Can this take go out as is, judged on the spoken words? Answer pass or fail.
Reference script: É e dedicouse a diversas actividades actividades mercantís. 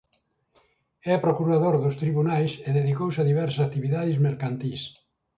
fail